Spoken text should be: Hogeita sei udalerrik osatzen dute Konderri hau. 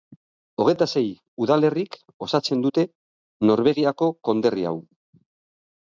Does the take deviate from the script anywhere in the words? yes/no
yes